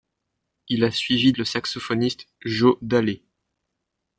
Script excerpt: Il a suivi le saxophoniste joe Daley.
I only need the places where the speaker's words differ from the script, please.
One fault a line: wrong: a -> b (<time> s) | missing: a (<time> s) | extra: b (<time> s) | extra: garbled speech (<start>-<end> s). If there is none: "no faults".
no faults